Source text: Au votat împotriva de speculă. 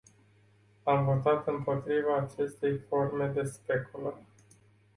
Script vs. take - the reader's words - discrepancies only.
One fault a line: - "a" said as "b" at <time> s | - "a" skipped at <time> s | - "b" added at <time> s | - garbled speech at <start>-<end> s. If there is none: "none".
- "Au" said as "Am" at 0.8 s
- "acestei forme" added at 2.2 s